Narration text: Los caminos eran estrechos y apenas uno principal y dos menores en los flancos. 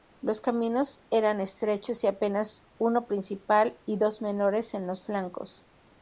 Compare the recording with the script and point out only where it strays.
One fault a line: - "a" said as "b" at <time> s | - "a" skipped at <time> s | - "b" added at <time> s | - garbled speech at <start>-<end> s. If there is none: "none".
none